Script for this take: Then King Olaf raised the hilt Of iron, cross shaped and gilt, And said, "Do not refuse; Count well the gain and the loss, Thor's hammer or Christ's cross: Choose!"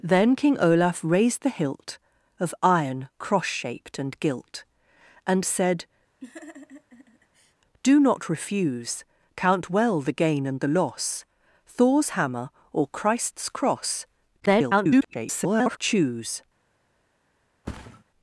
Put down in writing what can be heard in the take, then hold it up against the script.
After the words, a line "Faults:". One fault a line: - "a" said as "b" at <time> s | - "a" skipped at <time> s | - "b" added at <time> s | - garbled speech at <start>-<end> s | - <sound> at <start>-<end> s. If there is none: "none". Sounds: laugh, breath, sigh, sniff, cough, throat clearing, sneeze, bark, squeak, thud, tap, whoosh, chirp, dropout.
Then King Olaf raised the hilt Of iron, cross shaped and gilt, And said, "Do not refuse; Count well the gain and the loss, Thor's hammer or Christ's cross: [garbled] Choose!"
Faults:
- laugh at 6.2-7.5 s
- garbled speech at 14.4-15.8 s
- thud at 17.6-18.0 s